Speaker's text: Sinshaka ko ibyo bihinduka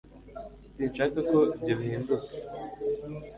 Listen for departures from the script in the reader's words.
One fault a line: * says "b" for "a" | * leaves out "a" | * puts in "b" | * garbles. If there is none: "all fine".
all fine